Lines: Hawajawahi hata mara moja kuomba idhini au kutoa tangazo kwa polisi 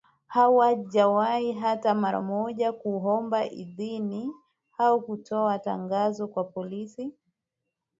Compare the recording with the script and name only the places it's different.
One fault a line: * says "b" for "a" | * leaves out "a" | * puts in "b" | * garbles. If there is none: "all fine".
all fine